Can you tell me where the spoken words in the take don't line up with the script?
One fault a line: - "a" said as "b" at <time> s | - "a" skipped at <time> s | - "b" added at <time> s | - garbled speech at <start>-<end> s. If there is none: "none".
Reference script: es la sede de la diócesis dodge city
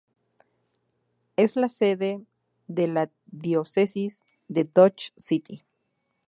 - "de" added at 4.5 s